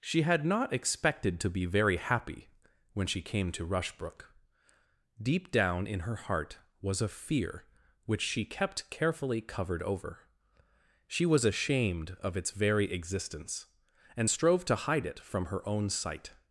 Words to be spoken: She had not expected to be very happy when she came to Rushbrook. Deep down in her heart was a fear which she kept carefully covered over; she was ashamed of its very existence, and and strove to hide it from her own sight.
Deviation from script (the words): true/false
true